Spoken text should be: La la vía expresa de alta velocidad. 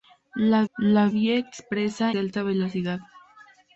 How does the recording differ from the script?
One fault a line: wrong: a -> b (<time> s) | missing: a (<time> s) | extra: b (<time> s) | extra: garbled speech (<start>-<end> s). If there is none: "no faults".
no faults